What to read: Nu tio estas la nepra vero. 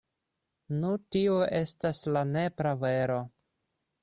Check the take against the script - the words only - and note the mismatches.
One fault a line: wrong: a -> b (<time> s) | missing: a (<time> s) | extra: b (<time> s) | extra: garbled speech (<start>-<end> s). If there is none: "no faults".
no faults